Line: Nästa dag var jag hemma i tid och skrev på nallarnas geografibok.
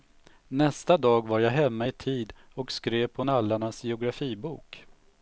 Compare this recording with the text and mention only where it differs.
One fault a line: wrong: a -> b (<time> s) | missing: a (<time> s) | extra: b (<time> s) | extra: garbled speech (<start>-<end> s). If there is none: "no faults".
no faults